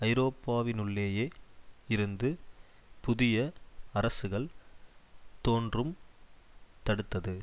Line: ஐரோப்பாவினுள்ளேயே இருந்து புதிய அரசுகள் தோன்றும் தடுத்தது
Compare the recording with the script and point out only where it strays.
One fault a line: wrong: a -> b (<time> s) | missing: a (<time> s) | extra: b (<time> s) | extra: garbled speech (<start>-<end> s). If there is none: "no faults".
no faults